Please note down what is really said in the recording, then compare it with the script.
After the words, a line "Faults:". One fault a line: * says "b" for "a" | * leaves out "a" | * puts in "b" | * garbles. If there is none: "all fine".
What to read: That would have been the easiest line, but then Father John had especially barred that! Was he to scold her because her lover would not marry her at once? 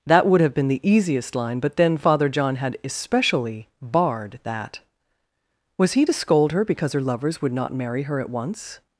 That would have been the easiest line, but then Father John had especially barred that! Was he to scold her because her lovers would not marry her at once?
Faults:
* says "lovers" for "lover"